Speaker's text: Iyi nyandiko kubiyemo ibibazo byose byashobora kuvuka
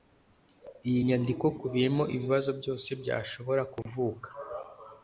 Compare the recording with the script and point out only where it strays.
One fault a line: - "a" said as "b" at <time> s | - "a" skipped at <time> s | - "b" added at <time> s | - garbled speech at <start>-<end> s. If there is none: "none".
none